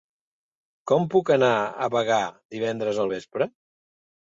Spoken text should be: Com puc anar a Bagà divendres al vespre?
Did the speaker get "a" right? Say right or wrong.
right